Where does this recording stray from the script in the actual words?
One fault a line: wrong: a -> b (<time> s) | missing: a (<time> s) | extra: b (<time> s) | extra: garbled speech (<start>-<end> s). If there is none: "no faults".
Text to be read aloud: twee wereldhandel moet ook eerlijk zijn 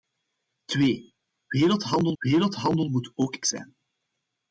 extra: wereldhandel (2.2 s)
missing: eerlijk (3.4 s)